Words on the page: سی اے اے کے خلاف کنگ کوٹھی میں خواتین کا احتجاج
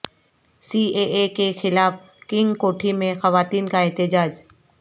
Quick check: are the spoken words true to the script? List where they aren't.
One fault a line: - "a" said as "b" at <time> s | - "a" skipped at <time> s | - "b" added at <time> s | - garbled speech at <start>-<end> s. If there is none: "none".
none